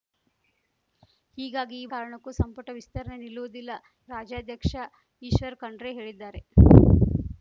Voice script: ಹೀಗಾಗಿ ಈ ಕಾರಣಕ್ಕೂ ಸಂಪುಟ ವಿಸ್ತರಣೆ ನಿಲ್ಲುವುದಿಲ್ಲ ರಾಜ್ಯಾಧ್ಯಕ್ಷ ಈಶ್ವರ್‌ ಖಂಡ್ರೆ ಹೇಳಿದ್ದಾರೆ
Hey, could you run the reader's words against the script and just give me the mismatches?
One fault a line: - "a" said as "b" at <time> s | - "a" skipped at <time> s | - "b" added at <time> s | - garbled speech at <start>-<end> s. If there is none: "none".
none